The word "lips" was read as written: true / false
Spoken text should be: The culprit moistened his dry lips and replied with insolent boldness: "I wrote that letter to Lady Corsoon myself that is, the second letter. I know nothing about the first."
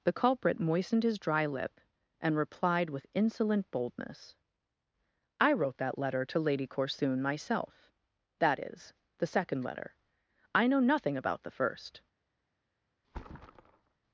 false